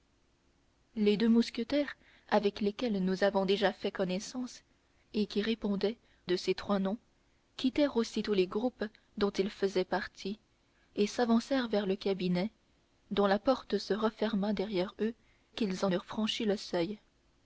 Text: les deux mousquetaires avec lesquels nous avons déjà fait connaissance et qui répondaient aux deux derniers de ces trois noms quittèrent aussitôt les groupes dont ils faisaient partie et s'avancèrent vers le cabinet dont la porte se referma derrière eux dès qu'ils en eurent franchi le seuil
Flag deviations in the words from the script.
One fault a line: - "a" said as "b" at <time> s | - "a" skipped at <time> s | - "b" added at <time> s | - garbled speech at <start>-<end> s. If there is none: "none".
- "aux deux derniers" skipped at 6.0 s
- "dès" skipped at 15.1 s